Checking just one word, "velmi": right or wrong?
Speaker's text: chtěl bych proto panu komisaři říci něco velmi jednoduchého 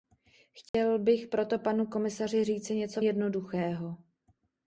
wrong